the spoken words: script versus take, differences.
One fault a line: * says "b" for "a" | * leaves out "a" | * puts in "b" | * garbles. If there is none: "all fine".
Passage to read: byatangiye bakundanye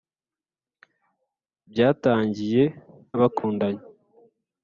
all fine